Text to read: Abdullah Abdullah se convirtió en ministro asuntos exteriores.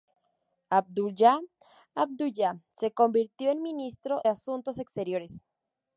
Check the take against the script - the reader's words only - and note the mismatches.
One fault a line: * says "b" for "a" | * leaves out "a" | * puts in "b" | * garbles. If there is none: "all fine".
all fine